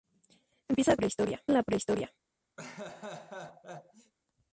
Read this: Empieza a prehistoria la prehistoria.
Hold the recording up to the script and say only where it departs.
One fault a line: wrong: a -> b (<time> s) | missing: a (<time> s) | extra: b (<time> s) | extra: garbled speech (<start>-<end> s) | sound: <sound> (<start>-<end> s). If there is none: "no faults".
sound: laugh (2.6-4.1 s)